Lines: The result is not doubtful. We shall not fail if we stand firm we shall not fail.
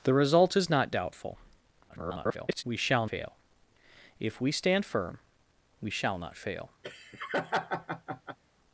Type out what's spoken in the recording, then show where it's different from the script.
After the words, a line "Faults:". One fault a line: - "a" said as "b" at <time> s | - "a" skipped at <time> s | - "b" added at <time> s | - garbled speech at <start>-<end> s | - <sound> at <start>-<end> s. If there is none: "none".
The result is not doubtful. [garbled] We shall fail if we stand firm we shall not fail.
Faults:
- garbled speech at 1.9-2.6 s
- "not" skipped at 3.1 s
- laugh at 6.8-8.4 s